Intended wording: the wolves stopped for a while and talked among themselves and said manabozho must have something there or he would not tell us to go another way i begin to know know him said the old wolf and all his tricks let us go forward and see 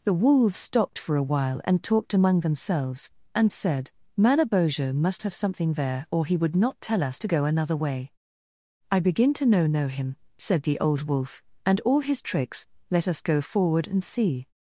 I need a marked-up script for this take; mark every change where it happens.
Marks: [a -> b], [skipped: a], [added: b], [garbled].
the wolves stopped for a while and talked among themselves and said manabozho must have something there or he would not tell us to go another way i begin to know know him said the old wolf and all his tricks let us go forward and see